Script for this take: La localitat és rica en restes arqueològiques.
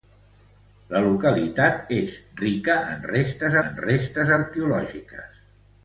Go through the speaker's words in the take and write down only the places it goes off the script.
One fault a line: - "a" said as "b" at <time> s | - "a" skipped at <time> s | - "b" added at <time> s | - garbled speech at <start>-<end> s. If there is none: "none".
- "en restes" added at 3.7 s